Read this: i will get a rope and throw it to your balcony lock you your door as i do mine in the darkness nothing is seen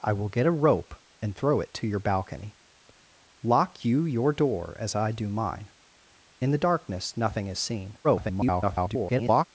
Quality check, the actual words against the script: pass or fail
fail